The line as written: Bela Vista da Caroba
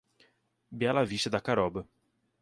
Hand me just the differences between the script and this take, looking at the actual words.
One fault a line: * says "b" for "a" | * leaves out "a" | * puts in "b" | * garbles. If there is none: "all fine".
all fine